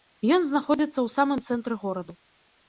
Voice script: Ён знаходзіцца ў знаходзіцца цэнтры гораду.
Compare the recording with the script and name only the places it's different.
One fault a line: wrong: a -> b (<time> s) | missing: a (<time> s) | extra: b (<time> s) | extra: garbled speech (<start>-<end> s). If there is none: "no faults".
wrong: знаходзіцца -> самым (1.2 s)